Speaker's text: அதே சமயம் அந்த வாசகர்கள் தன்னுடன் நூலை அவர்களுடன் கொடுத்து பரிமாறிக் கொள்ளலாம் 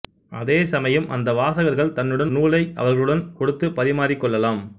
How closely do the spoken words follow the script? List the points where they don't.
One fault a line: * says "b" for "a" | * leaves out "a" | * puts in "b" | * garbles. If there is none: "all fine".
all fine